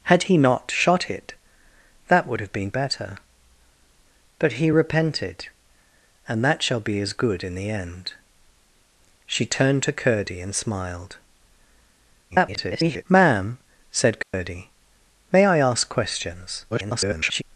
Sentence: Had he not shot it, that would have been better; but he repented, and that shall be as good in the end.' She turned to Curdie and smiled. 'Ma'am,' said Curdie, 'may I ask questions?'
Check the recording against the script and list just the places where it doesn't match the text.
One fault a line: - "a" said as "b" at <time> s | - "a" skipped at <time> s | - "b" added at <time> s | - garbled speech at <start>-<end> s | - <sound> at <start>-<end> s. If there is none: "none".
- garbled speech at 12.3-13.0 s
- dropout at 14.2-14.3 s
- garbled speech at 16.7-17.4 s